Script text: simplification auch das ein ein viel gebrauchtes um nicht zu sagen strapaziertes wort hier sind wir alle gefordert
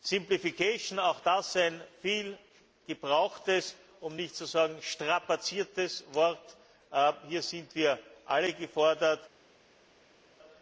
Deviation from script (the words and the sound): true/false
true